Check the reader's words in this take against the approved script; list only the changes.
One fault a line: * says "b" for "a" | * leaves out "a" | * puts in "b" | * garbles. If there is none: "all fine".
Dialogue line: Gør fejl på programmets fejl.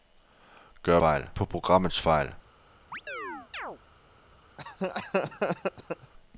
all fine